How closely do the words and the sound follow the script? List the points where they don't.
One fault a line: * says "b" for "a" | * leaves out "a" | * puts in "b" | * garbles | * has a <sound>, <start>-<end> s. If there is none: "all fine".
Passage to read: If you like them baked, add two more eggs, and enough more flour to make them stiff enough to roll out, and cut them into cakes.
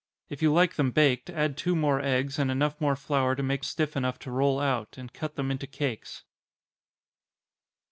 * leaves out "them"